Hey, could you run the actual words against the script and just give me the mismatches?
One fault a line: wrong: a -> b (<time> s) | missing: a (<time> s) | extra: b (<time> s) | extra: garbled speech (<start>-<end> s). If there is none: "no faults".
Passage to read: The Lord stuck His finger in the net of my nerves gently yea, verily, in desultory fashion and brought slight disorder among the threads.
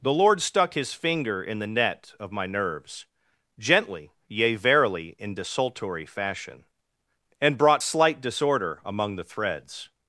no faults